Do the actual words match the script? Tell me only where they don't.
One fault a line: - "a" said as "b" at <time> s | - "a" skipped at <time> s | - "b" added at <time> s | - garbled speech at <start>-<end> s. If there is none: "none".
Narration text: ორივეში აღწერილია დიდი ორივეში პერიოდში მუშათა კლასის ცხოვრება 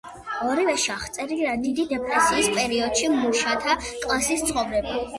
- "ორივეში" said as "დეპრესიის" at 1.9 s